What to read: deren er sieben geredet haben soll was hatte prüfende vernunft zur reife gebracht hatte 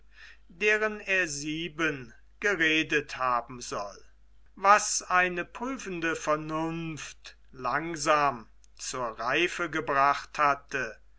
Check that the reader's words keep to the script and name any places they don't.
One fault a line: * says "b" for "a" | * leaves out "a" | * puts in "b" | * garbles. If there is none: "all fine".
* says "eine" for "hatte"
* puts in "langsam"